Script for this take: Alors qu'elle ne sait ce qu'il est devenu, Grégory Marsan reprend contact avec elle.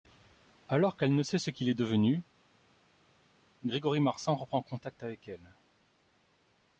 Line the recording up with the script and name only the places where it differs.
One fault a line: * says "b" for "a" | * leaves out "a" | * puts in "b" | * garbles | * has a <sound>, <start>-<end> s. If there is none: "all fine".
all fine